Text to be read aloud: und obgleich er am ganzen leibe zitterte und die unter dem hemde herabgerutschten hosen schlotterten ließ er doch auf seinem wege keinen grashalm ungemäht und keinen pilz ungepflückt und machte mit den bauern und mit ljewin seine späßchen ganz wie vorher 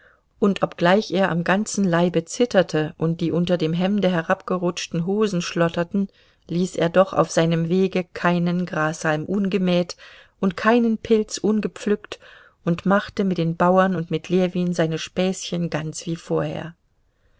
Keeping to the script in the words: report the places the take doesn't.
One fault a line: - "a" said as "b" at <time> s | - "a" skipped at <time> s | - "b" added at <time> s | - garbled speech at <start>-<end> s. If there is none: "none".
none